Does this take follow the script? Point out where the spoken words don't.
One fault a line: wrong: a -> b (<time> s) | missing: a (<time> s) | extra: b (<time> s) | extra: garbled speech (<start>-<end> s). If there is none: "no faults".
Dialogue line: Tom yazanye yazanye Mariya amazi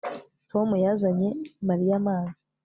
missing: yazanye (1.3 s)